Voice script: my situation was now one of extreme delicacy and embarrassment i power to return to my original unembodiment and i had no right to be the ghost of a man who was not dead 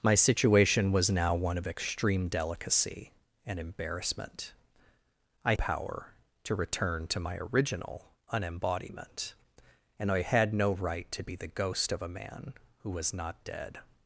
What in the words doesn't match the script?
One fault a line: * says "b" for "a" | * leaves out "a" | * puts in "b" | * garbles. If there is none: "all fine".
all fine